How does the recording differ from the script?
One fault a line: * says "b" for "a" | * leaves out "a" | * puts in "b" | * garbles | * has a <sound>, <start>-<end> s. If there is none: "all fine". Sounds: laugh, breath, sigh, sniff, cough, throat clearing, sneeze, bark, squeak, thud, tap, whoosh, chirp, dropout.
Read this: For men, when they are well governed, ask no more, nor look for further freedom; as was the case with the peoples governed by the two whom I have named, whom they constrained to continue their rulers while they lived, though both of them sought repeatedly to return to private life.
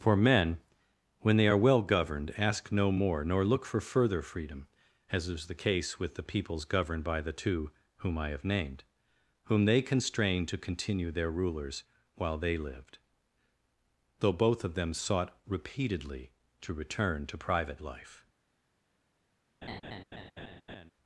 * says "is" for "was"
* has a laugh, 19.6-20.9 s